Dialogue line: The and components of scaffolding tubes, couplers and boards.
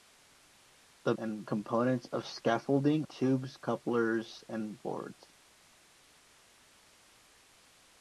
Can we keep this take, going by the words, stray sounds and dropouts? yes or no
yes